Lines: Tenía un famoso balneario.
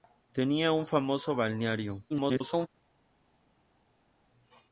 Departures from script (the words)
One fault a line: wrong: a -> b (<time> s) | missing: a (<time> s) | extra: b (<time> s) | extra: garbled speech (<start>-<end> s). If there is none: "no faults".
extra: garbled speech (2.1-2.7 s)